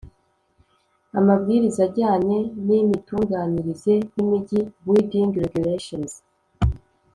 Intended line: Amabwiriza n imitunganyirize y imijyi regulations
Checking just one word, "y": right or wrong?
right